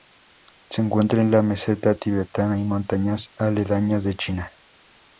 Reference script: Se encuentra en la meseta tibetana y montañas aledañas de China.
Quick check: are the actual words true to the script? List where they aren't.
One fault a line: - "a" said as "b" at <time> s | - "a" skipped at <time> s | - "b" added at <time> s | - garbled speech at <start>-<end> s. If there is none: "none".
none